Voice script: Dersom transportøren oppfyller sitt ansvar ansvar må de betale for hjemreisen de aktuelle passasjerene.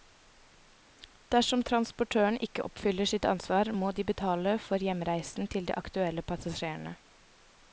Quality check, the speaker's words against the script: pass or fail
fail